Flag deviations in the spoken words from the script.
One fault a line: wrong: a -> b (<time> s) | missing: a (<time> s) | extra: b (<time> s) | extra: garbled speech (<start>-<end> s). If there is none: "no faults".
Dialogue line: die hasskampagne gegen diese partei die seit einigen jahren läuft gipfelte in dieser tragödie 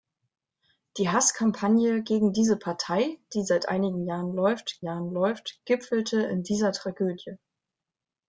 extra: jahren läuft (4.8 s)